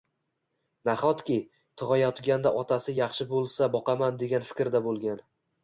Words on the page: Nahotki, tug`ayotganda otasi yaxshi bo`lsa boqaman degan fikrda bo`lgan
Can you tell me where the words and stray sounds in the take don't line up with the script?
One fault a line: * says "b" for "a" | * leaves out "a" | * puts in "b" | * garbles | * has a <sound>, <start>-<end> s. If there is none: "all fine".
all fine